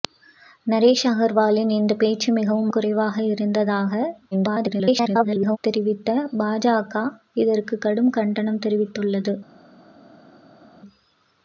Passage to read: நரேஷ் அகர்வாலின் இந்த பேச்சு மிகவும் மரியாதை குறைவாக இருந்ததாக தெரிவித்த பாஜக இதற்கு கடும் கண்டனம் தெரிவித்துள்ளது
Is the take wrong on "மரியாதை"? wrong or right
wrong